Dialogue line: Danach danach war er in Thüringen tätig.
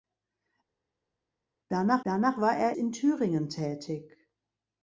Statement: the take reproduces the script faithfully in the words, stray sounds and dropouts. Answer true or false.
true